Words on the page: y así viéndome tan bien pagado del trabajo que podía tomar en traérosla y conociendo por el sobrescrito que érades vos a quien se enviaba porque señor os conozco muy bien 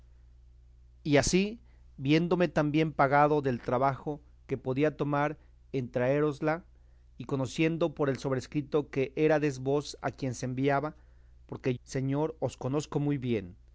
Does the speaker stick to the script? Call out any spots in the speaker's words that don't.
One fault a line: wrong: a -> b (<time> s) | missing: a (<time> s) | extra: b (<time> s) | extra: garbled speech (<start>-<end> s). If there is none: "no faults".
no faults